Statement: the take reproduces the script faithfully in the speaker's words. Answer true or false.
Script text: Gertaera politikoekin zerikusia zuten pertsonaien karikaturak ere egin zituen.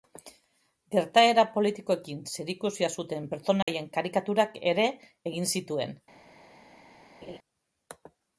true